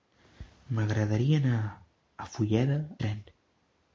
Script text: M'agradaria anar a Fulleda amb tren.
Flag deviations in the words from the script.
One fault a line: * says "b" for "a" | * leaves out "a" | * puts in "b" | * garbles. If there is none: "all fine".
* leaves out "amb"